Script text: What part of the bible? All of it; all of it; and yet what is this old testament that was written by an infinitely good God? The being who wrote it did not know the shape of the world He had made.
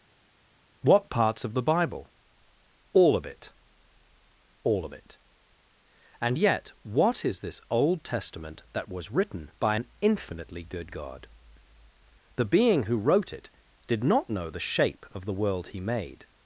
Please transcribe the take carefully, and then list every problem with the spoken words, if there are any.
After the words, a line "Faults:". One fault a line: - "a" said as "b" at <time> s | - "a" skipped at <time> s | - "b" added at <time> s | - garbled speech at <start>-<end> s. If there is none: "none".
What parts of the bible? All of it; all of it; and yet what is this old testament that was written by an infinitely good God? The being who wrote it did not know the shape of the world He made.
Faults:
- "part" said as "parts" at 1.1 s
- "had" skipped at 15.8 s